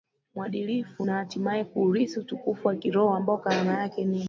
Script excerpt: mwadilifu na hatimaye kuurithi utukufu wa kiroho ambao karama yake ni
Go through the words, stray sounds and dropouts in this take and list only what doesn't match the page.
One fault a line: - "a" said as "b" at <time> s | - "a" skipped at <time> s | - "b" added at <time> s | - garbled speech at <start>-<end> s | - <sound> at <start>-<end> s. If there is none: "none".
none